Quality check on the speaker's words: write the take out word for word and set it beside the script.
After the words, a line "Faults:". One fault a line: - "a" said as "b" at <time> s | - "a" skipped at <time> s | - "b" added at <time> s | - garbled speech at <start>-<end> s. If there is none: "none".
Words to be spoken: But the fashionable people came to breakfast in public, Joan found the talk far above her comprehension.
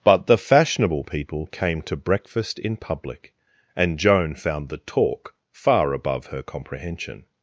But the fashionable people came to breakfast in public, and Joan found the talk far above her comprehension.
Faults:
- "and" added at 3.8 s